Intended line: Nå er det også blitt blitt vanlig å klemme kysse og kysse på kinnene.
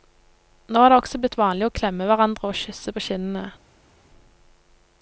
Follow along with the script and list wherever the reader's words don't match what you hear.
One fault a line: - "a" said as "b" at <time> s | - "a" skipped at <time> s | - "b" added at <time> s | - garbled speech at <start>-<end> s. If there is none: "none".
- "blitt" skipped at 1.4 s
- "kysse" said as "hverandre" at 2.1 s